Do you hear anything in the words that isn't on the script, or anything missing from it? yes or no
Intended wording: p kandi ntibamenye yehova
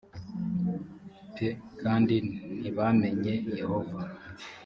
no